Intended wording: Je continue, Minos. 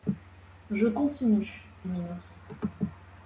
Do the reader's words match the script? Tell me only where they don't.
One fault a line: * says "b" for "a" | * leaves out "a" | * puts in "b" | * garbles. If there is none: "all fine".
all fine